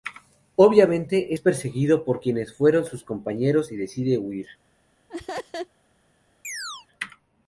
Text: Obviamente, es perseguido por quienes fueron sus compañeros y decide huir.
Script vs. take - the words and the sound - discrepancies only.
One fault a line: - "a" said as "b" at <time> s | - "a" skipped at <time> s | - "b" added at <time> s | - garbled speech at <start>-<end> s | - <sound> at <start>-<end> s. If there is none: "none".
- laugh at 5.1-5.7 s
- chirp at 6.4-6.9 s